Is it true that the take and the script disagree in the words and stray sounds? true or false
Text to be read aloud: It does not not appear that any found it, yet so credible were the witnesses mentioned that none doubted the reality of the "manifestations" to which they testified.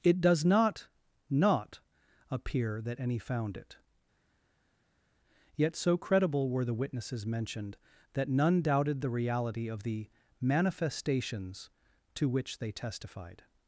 false